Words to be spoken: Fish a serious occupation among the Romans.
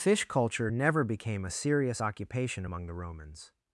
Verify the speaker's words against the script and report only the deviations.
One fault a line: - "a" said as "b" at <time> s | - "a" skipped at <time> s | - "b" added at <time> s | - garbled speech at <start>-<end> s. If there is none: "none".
- "culture never became" added at 0.2 s